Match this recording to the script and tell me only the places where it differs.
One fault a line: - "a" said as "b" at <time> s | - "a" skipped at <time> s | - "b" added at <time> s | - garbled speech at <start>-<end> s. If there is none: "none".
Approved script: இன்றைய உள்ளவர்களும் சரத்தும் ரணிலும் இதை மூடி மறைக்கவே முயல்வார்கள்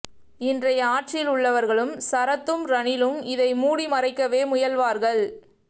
- "ஆட்சியில்" added at 0.8 s